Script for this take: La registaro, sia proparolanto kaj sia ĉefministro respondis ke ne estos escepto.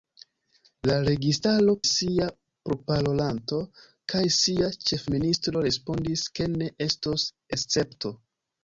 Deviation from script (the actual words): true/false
false